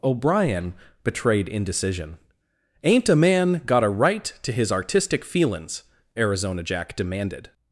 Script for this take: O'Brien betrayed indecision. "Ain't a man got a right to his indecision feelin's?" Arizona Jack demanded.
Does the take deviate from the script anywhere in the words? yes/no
yes